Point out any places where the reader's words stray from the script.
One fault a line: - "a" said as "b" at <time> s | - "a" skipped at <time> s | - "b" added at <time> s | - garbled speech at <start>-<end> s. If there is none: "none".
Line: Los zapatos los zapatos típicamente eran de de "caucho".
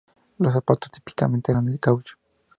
- "los zapatos" skipped at 0.9 s
- "de" skipped at 1.8 s